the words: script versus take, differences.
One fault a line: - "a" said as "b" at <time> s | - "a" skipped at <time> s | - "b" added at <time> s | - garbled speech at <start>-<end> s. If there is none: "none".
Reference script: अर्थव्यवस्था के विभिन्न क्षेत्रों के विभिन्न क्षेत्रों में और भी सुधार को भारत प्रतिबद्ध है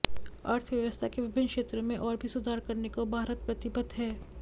- "के विभिन्न क्षेत्रों" skipped at 1.8 s
- "करने" added at 2.7 s